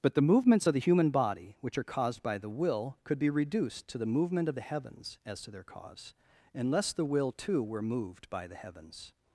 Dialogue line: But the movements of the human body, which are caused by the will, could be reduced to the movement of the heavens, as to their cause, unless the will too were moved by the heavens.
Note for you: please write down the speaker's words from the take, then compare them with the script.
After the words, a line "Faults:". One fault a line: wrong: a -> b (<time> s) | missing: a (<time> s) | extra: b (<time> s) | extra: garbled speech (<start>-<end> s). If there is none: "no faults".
But the movements of the human body, which are caused by the will, could be reduced to the movement of the heavens, as to their cause, unless the will too were moved by the heavens.
Faults:
no faults